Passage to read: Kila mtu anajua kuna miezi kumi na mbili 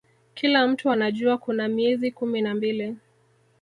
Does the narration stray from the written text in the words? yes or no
no